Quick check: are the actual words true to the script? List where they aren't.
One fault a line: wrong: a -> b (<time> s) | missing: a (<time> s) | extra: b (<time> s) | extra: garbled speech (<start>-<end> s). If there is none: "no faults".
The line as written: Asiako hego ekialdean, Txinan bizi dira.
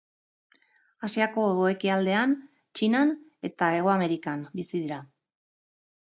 extra: eta Hego Amerikan (3.5 s)